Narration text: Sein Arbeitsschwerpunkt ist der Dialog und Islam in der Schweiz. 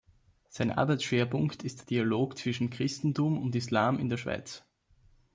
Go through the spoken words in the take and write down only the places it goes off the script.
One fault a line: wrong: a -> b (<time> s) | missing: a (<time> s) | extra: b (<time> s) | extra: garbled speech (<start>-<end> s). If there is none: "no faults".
extra: zwischen Christentum (2.4 s)